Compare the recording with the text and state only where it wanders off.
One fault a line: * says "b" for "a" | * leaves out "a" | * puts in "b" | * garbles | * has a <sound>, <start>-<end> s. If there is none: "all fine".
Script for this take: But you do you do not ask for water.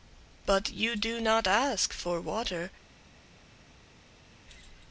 * leaves out "you do"